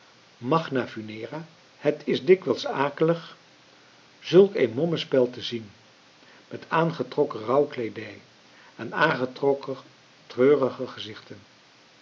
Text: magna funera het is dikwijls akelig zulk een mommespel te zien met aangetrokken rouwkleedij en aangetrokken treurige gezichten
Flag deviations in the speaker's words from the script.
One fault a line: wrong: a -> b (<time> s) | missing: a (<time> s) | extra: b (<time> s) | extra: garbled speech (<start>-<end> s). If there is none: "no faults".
no faults